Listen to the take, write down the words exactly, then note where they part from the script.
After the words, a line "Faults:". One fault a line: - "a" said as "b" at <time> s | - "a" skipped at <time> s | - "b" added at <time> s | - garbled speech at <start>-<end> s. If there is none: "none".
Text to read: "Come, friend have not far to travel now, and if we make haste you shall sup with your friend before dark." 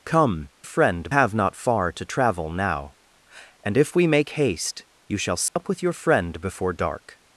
"Come, friend have not far to travel now, and if we make haste you shall sup with your friend before dark."
Faults:
none